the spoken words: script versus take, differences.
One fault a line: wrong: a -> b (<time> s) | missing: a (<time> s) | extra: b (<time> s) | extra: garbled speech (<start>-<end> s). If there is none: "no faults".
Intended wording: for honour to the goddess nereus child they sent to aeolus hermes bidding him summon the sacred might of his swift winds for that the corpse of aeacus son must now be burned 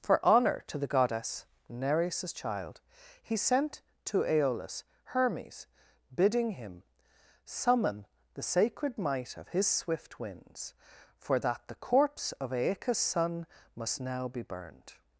wrong: they -> he (3.2 s)